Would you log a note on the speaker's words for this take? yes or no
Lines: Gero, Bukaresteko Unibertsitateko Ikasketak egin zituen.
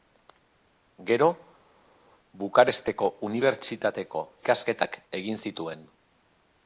no